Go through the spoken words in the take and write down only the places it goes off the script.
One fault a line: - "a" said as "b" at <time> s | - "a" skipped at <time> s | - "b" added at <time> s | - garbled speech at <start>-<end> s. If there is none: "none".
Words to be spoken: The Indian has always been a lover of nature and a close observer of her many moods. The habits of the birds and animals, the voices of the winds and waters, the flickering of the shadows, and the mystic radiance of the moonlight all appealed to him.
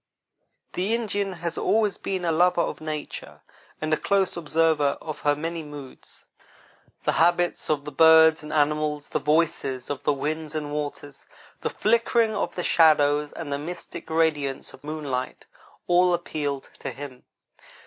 - "the" skipped at 14.8 s